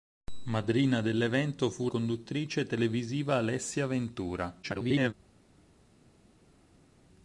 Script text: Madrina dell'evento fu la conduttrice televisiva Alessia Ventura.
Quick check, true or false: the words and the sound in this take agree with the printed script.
false